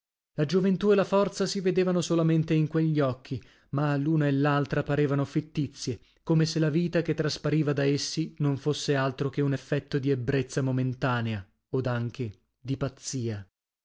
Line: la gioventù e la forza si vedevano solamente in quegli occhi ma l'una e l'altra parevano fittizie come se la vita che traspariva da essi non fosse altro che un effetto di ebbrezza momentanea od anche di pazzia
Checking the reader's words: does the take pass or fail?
pass